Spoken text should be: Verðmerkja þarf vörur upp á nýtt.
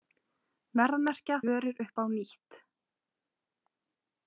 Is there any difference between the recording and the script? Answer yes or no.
yes